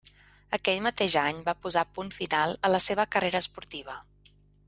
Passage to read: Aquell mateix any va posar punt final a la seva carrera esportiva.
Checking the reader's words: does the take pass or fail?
pass